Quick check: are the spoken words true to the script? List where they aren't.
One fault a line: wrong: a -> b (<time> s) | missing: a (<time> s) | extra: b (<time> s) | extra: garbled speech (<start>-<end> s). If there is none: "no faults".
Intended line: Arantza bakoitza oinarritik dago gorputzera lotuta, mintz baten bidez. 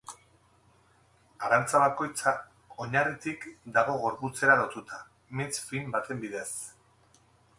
extra: fin (5.7 s)